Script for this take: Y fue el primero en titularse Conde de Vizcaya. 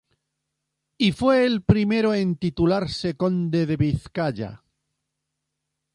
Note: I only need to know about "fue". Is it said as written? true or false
true